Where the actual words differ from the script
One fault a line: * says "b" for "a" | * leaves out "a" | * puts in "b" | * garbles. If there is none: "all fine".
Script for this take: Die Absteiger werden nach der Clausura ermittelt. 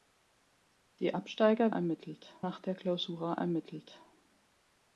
* says "ermittelt" for "werden"